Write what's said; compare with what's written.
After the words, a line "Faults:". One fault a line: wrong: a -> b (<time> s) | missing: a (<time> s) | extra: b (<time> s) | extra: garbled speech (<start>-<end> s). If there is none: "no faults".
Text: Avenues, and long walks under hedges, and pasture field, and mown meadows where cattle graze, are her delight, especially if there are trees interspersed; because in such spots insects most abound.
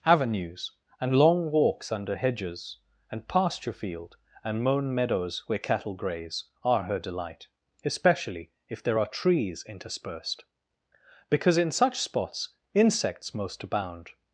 Avenues, and long walks under hedges, and pasture field, and mown meadows where cattle graze, are her delight, especially if there are trees interspersed; because in such spots insects most abound.
Faults:
no faults